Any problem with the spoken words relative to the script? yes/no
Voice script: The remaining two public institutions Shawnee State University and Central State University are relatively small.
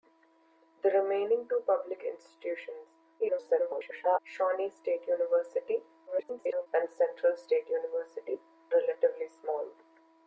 yes